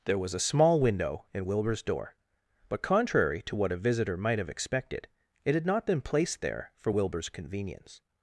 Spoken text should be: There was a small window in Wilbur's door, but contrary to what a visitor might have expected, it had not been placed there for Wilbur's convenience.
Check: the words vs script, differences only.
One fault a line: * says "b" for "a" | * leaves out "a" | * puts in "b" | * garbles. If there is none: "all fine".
all fine